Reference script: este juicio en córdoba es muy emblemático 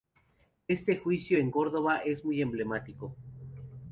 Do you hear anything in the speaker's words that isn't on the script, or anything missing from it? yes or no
no